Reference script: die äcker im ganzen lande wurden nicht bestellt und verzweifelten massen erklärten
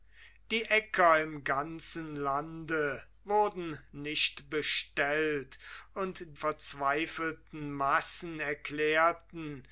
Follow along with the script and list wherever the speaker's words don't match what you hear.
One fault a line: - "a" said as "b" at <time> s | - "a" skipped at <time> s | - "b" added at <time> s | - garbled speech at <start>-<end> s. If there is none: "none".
none